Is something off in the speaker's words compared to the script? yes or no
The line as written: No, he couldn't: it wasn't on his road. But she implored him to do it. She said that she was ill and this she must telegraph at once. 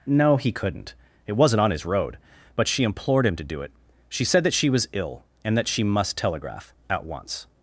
yes